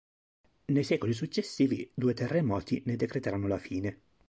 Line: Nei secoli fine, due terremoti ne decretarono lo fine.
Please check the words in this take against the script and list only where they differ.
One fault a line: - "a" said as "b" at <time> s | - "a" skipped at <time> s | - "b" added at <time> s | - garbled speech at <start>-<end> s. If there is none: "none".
- "fine" said as "successivi" at 1.1 s
- "lo" said as "la" at 3.5 s